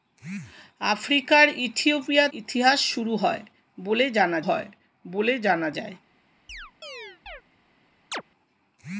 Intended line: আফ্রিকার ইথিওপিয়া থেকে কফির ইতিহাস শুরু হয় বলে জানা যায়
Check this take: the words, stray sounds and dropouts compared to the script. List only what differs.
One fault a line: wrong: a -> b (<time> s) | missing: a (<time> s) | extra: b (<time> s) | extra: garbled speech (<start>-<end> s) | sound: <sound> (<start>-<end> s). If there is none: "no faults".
wrong: থেকে কফির ইতিহাস শুরু -> ইতিহাস শুরু হয় বলে জানা (2.3 s)
sound: chirp (6.5-7.4 s)
sound: chirp (8.1-8.2 s)